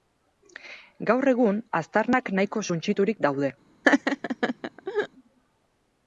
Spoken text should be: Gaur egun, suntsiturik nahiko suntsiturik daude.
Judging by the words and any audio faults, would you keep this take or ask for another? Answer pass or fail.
fail